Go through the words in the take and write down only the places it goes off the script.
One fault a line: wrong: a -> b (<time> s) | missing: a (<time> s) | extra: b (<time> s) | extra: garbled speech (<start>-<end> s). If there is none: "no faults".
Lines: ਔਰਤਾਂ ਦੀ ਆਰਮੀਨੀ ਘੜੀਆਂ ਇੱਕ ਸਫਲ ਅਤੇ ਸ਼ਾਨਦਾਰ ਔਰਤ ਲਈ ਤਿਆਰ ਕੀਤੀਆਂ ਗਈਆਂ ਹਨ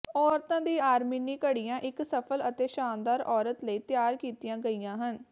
no faults